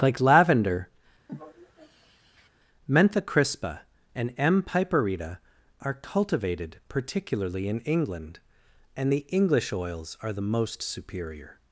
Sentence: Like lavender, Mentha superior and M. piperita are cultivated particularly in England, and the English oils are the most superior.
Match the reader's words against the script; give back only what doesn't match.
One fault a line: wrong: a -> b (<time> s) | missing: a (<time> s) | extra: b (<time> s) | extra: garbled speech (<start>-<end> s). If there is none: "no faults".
wrong: superior -> crispa (3.2 s)